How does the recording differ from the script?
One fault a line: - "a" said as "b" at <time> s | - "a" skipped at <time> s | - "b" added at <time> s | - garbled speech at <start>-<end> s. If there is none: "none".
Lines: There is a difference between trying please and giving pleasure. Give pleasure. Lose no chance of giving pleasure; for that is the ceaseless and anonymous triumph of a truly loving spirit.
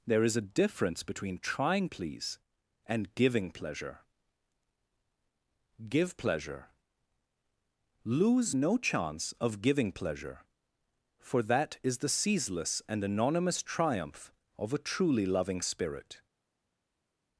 none